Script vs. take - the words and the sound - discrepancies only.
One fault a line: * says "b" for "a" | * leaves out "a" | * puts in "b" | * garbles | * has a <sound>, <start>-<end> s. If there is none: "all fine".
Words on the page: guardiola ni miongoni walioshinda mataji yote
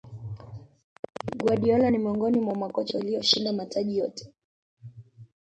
* puts in "mwa makocha"